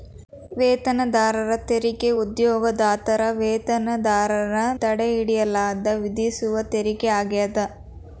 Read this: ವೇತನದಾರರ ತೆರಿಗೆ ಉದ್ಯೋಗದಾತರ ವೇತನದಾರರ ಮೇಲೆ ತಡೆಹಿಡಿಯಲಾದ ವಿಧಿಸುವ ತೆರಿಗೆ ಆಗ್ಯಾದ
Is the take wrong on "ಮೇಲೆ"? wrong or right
wrong